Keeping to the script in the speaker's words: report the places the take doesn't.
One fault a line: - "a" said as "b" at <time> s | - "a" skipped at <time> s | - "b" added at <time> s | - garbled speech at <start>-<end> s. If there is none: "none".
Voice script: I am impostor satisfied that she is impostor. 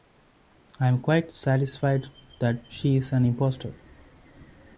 - "impostor" said as "quite" at 1.0 s
- "an" added at 3.1 s